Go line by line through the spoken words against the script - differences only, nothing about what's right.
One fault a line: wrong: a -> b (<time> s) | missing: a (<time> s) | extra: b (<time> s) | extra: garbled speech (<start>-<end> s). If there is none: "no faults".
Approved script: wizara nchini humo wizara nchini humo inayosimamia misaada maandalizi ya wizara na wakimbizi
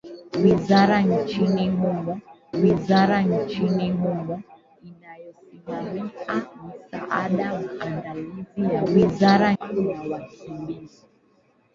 no faults